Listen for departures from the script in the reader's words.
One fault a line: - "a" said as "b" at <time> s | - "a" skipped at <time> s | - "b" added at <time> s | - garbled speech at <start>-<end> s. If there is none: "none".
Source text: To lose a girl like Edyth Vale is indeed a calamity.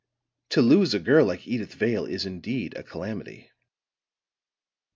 none